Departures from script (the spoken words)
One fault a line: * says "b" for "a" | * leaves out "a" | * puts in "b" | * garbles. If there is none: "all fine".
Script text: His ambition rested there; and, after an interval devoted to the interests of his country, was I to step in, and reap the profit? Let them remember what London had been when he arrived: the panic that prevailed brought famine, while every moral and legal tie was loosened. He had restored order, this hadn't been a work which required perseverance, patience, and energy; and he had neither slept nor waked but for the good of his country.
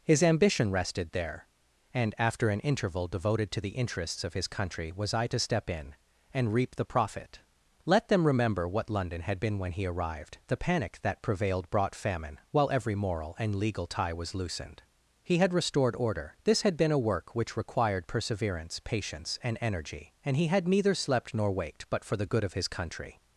* says "had" for "hadn't"